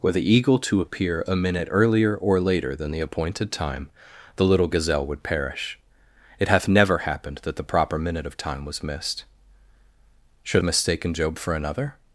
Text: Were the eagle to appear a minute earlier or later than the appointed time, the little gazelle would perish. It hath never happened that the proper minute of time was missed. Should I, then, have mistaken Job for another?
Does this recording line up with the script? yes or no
no